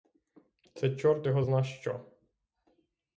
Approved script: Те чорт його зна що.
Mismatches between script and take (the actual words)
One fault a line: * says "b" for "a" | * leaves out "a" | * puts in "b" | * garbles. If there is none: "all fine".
* says "Це" for "Те"